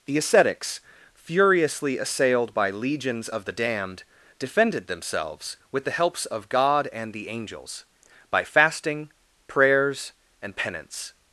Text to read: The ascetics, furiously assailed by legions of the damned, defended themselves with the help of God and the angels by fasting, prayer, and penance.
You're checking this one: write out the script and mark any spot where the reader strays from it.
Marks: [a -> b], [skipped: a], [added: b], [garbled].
The ascetics, furiously assailed by legions of the damned, defended themselves with the [help -> helps] of God and the angels by fasting, [prayer, -> prayers] and penance.